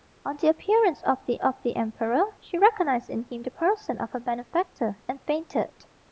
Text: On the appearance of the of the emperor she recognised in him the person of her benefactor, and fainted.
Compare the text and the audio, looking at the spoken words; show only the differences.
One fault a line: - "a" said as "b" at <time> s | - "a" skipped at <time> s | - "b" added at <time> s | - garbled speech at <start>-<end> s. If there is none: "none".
none